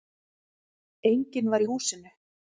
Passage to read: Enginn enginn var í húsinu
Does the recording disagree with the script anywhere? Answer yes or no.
yes